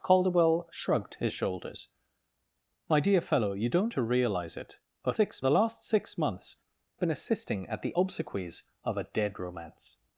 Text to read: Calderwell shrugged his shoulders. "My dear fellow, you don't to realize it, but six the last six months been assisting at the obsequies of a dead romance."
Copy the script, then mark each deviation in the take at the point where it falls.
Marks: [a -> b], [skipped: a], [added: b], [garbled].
Calderwell shrugged his shoulders. "My dear fellow, you don't to realize it, but six the last six months been assisting at the obsequies of a dead romance."